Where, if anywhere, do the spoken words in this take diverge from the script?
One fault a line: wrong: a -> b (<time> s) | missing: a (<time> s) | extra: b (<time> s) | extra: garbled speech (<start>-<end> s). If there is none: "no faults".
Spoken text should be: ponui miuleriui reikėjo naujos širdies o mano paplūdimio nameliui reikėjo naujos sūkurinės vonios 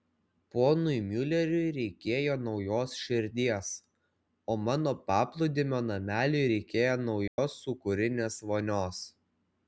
no faults